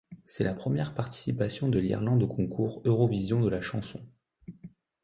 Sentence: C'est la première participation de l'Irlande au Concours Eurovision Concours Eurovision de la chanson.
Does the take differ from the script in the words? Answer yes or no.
yes